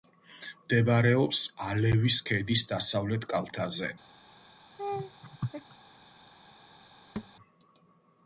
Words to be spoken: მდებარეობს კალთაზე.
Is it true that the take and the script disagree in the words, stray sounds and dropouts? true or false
true